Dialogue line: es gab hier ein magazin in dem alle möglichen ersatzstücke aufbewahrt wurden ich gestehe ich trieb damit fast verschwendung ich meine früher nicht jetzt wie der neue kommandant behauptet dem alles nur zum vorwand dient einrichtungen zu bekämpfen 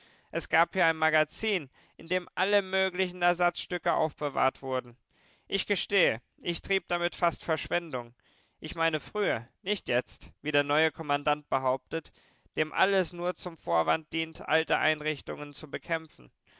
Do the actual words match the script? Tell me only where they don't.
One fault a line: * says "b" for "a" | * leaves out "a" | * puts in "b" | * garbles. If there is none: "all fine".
* puts in "alte"